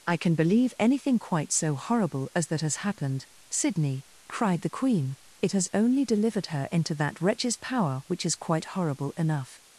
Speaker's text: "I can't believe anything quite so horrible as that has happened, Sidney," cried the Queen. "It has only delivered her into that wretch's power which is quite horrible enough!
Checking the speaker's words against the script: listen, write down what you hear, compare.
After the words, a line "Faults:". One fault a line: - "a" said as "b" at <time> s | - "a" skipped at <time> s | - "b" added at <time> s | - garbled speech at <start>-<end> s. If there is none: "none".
"I can believe anything quite so horrible as that has happened, Sidney," cried the Queen. "It has only delivered her into that wretch's power which is quite horrible enough!
Faults:
- "can't" said as "can" at 0.2 s